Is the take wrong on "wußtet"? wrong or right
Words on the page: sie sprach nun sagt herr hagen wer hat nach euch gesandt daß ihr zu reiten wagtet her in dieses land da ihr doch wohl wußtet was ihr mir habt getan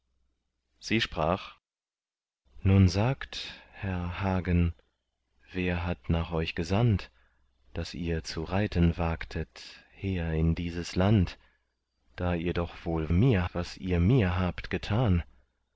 wrong